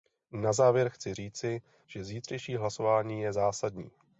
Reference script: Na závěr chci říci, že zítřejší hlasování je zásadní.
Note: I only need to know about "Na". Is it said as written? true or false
true